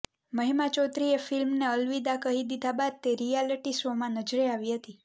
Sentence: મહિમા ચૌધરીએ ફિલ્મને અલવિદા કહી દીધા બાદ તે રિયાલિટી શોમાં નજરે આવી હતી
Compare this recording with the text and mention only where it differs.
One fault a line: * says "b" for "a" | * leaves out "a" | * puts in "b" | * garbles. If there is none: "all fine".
all fine